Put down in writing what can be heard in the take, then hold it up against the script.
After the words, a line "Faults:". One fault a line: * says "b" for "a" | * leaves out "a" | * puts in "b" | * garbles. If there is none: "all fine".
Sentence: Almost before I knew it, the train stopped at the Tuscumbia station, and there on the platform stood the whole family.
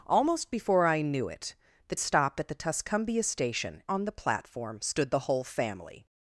Almost before I knew it, the stopped at the Tuscumbia station, on the platform stood the whole family.
Faults:
* leaves out "train"
* leaves out "and there"